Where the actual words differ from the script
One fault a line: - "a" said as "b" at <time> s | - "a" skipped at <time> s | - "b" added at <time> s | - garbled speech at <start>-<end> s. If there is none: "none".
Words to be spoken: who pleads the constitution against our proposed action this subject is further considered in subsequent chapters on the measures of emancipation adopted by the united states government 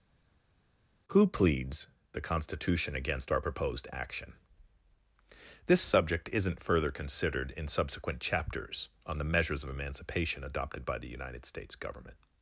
- "is" said as "isn't" at 6.3 s